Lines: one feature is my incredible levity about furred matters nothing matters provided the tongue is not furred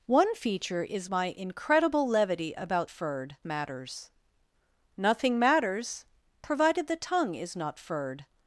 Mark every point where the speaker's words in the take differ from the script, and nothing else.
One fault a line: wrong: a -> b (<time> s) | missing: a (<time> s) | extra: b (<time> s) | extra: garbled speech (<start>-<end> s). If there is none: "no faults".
no faults